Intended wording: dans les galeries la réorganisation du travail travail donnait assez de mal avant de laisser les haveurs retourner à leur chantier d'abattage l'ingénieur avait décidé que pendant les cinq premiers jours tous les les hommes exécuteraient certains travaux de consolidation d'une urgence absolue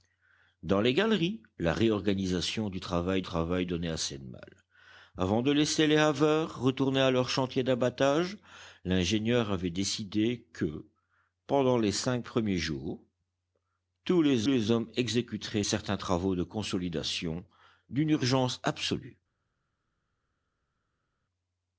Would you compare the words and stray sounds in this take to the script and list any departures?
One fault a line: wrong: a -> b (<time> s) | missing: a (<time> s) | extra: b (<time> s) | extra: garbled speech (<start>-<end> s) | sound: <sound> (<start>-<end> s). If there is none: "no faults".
no faults